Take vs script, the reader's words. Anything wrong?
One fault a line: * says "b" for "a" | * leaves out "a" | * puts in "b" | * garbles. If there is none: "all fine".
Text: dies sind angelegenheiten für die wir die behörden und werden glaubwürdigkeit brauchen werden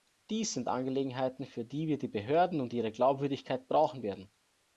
* says "ihre" for "werden"